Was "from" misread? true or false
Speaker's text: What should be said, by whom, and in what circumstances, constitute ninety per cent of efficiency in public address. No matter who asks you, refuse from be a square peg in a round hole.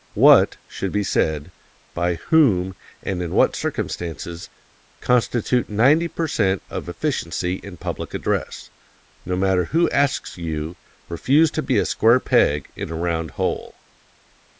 true